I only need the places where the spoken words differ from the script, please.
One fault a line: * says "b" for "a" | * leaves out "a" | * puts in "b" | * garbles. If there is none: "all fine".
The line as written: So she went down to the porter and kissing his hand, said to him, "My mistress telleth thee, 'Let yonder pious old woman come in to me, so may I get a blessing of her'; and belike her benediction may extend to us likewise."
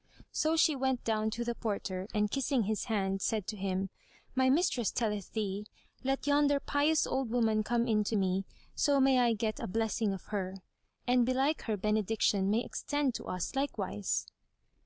all fine